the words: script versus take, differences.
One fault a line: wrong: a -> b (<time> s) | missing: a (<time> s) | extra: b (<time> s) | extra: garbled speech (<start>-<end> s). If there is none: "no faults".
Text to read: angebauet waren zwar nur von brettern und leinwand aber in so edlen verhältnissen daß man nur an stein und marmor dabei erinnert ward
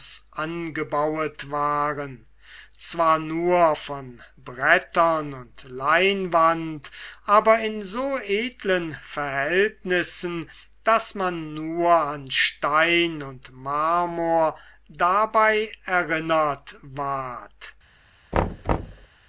no faults